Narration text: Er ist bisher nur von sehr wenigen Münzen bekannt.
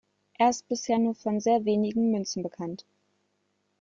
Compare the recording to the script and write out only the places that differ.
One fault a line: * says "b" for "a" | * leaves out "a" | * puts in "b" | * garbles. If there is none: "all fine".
all fine